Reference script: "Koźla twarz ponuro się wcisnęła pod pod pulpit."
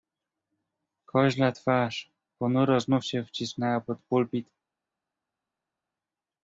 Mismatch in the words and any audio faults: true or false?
true